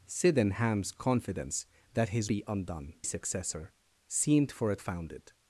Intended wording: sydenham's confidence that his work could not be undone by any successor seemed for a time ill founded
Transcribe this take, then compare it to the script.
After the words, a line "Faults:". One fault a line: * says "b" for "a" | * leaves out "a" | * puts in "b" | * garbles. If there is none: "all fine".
sydenham's confidence that his be undone successor seemed for a founded
Faults:
* leaves out "work could not"
* leaves out "by any"
* leaves out "time ill"